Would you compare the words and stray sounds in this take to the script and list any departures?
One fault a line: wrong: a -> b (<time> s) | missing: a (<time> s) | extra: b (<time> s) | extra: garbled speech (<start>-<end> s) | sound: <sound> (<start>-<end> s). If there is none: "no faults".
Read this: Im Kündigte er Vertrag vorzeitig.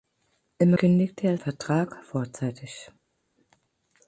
no faults